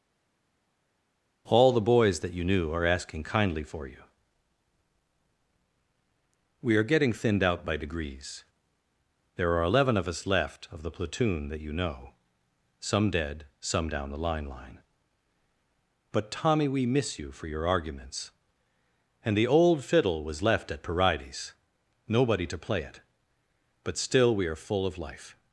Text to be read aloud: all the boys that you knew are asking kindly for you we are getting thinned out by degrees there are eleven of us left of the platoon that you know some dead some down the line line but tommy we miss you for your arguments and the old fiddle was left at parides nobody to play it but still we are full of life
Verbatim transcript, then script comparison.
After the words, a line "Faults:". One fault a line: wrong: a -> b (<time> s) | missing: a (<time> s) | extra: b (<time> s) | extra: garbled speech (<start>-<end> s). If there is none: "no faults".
all the boys that you knew are asking kindly for you we are getting thinned out by degrees there are eleven of us left of the platoon that you know some dead some down the line line but tommy we miss you for your arguments and the old fiddle was left at parides nobody to play it but still we are full of life
Faults:
no faults